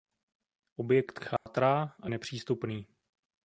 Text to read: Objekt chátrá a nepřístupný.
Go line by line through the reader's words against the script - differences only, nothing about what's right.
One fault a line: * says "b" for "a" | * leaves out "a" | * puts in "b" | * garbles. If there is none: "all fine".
all fine